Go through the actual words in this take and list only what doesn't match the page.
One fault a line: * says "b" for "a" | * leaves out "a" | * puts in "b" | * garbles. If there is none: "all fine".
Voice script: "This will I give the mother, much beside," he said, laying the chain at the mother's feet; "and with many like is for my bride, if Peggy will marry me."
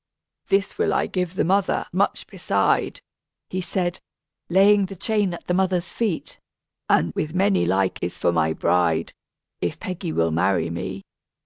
all fine